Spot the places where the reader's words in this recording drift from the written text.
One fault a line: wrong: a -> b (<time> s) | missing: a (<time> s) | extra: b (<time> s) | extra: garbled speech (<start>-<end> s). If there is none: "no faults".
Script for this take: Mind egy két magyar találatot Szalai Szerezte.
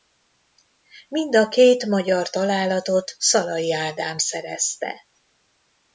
wrong: egy -> a (1.4 s)
extra: Ádám (3.7 s)